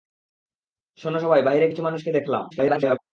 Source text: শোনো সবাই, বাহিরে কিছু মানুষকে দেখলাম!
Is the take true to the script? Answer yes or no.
no